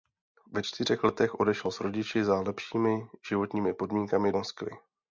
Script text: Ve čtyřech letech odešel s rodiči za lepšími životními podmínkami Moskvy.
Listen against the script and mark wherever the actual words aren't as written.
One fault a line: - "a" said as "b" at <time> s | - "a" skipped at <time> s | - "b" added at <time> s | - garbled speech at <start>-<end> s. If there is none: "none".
none